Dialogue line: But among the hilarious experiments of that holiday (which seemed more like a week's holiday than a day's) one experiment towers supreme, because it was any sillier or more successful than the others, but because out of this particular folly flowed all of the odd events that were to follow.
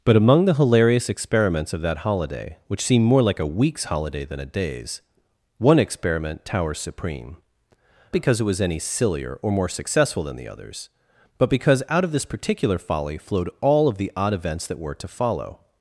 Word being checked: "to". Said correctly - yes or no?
yes